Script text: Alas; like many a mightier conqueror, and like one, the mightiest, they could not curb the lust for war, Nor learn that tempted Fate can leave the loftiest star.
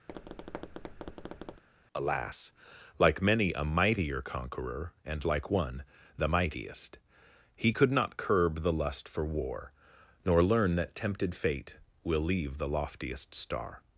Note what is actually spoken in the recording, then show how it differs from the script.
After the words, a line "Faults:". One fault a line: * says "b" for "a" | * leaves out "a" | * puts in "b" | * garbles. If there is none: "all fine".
Alas; like many a mightier conqueror, and like one, the mightiest, he could not curb the lust for war, Nor learn that tempted Fate will leave the loftiest star.
Faults:
* says "he" for "they"
* says "will" for "can"